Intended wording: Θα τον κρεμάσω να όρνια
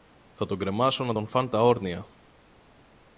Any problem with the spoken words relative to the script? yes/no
yes